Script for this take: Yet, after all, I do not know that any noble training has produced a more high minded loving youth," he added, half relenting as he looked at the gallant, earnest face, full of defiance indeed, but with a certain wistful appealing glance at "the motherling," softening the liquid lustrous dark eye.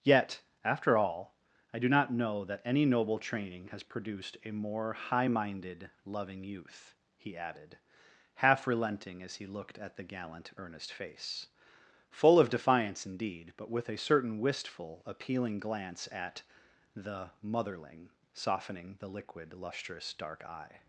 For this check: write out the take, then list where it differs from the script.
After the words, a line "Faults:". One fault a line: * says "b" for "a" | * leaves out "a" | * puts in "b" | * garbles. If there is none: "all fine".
Yet, after all, I do not know that any noble training has produced a more high minded loving youth," he added, half relenting as he looked at the gallant, earnest face, full of defiance indeed, but with a certain wistful appealing glance at "the motherling," softening the liquid lustrous dark eye.
Faults:
all fine